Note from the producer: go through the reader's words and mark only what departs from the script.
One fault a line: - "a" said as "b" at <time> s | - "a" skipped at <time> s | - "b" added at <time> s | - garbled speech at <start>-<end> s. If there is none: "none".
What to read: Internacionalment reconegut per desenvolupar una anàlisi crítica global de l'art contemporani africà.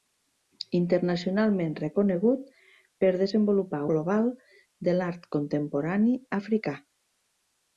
- "una anàlisi crítica" skipped at 3.8 s